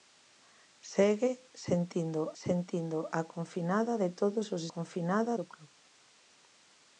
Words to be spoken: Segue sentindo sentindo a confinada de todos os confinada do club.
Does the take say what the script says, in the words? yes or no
yes